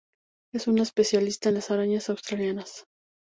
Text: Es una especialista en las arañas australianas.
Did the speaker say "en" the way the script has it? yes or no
yes